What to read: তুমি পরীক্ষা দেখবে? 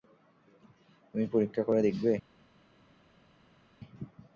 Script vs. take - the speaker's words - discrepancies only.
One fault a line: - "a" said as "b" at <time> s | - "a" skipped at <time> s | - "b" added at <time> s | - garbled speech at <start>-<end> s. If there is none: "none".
- "করে" added at 1.7 s